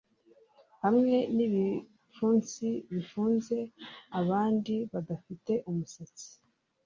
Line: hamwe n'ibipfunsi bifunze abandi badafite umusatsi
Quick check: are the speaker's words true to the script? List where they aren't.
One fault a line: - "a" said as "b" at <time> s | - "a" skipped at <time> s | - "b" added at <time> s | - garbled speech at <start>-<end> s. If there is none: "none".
none